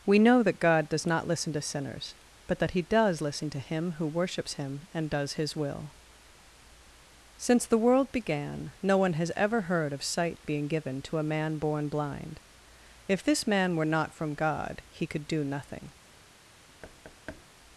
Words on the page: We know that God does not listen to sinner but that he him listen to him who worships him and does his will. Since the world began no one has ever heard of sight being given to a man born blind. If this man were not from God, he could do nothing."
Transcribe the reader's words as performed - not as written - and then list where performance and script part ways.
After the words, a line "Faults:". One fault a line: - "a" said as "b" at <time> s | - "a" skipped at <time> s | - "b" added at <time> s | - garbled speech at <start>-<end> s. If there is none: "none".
We know that God does not listen to sinners but that he does listen to him who worships him and does his will. Since the world began no one has ever heard of sight being given to a man born blind. If this man were not from God, he could do nothing."
Faults:
- "sinner" said as "sinners" at 1.6 s
- "him" said as "does" at 2.8 s